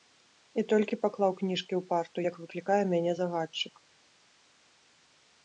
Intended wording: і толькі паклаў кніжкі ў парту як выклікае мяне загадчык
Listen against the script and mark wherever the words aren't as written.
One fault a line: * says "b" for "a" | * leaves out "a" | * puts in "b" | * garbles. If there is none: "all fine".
all fine